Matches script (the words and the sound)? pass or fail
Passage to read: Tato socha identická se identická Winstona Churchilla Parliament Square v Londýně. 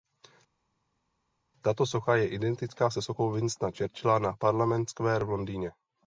fail